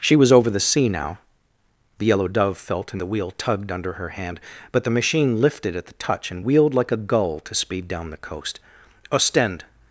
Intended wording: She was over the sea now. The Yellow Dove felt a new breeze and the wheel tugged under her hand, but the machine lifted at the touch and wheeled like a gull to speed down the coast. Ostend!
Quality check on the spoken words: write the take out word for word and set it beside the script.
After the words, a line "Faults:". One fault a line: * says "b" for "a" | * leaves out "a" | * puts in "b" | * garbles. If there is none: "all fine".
She was over the sea now. The Yellow Dove felt a the wheel tugged under her hand, but the machine lifted at the touch and wheeled like a gull to speed down the coast. Ostend!
Faults:
* leaves out "new breeze and"